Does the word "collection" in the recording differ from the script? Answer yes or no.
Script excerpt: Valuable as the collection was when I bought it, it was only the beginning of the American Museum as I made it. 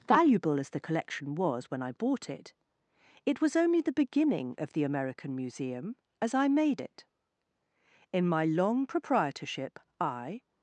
no